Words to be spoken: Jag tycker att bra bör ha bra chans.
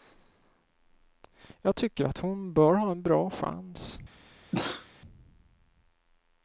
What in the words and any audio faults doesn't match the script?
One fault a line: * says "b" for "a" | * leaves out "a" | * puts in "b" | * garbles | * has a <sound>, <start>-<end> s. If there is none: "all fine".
* says "hon" for "bra"
* puts in "en"
* has a sneeze, 4.5-4.9 s